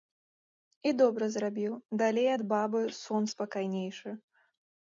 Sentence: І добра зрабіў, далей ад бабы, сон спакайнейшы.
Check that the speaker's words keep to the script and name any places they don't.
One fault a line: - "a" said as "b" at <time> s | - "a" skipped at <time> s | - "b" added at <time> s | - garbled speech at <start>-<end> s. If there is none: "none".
none